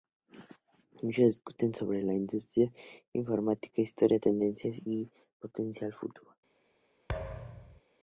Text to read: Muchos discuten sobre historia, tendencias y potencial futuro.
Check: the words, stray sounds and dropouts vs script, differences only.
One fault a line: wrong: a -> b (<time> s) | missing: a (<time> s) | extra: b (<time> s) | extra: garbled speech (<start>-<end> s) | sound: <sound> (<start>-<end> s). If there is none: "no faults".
extra: la industria informática (2.0 s)
sound: thud (7.1-7.8 s)